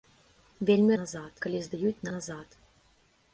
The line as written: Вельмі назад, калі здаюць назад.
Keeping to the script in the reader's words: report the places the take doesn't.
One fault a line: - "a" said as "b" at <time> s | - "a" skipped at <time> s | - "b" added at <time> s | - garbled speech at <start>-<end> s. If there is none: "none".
none